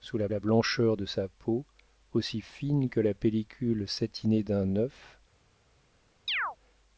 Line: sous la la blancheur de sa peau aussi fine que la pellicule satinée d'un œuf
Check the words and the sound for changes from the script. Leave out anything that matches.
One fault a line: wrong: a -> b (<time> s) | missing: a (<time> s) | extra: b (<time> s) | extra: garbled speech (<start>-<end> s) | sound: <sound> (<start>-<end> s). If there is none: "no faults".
sound: chirp (6.3-6.6 s)